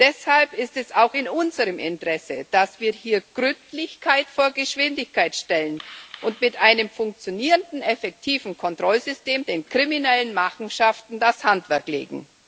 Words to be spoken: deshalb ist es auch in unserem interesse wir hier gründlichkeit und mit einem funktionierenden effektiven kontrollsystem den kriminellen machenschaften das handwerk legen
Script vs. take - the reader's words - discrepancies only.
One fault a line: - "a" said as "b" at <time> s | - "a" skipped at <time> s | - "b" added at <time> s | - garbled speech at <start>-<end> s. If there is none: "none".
- "dass" added at 2.5 s
- "vor geschwindigkeit stellen" added at 4.3 s